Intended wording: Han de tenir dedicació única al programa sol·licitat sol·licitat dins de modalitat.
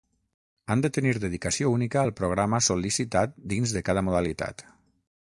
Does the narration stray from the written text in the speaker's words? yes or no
yes